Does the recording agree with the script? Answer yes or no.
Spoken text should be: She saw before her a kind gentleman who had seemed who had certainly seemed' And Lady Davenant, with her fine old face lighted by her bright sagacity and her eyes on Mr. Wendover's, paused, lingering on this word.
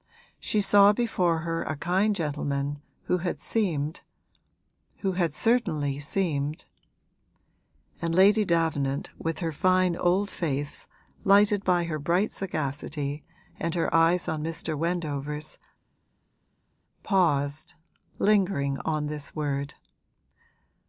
yes